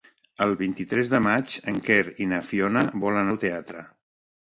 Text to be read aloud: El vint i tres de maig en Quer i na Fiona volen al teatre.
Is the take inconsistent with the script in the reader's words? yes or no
no